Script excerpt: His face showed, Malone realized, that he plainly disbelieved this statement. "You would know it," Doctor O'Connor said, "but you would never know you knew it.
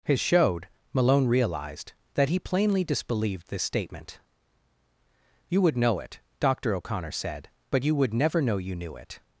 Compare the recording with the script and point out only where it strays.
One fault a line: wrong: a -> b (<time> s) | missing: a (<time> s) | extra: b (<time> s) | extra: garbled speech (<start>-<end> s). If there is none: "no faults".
missing: face (0.2 s)